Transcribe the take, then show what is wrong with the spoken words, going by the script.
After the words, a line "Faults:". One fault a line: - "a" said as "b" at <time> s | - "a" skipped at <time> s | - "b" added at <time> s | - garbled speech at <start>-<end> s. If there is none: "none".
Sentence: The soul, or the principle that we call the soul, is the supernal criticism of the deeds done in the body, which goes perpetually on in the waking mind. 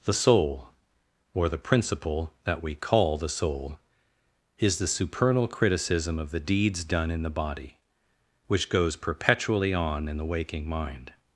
The soul, or the principle that we call the soul, is the supernal criticism of the deeds done in the body, which goes perpetually on in the waking mind.
Faults:
none